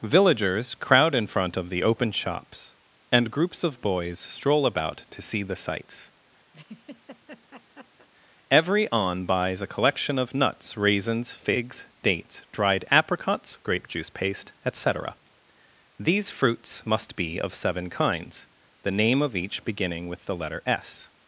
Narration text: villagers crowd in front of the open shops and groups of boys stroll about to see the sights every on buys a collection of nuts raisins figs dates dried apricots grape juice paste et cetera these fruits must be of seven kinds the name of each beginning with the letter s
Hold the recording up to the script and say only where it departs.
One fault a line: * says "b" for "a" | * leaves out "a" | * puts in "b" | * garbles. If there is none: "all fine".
all fine